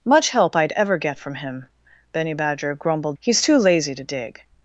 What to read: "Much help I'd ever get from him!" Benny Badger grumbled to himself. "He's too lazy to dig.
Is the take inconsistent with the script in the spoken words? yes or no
yes